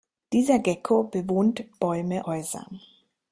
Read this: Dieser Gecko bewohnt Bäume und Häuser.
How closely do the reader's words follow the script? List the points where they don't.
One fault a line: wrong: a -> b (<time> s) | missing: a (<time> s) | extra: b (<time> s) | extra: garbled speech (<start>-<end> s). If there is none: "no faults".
missing: und (2.2 s)